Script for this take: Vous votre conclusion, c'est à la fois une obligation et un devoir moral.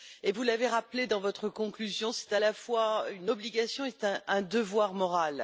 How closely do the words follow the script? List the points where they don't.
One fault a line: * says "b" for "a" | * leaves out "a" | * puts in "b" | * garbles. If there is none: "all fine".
* puts in "l'avez rappelé dans"